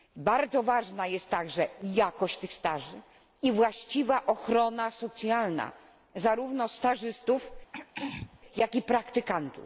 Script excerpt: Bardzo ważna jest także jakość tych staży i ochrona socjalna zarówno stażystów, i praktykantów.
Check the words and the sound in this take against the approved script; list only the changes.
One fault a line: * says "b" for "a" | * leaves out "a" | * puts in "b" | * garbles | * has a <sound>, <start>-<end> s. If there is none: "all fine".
* puts in "właściwa"
* has a throat clearing, 7.7-8.4 s
* puts in "jak"